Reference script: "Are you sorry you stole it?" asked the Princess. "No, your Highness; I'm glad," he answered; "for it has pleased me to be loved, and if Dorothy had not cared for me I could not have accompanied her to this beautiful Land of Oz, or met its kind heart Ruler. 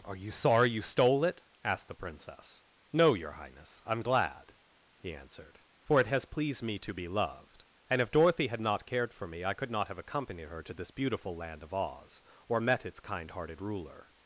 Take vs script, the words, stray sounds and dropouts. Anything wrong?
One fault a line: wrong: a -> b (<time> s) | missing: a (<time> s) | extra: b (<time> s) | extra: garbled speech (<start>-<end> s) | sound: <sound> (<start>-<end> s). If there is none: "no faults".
wrong: heart -> hearted (13.3 s)